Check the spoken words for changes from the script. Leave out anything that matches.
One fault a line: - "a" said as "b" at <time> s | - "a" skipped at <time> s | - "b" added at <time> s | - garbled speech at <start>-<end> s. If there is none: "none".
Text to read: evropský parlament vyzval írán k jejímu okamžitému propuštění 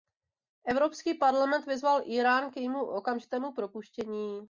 none